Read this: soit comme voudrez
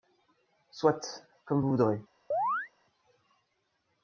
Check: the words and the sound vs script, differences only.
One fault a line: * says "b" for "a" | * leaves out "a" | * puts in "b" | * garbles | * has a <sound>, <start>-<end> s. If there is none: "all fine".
* puts in "vous"
* has a chirp, 2.3-2.7 s